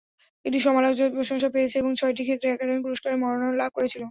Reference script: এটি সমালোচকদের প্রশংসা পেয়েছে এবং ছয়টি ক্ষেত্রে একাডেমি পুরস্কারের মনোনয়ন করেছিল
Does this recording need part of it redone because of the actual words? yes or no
yes